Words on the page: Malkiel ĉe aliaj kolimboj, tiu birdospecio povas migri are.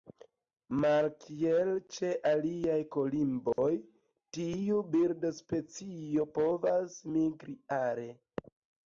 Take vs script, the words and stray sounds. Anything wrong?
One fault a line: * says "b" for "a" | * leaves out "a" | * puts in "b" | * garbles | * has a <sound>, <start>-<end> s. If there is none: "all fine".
* has a dropout, 3.5-3.6 s